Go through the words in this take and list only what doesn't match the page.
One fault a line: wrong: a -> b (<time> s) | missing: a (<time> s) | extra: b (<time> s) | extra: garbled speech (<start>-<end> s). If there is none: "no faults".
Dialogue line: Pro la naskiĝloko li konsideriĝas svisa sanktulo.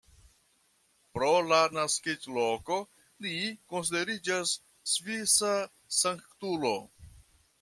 no faults